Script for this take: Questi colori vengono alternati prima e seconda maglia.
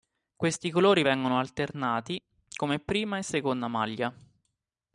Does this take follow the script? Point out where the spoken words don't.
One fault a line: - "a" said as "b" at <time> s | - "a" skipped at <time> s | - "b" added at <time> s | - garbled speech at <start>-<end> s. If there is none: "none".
- "come" added at 2.5 s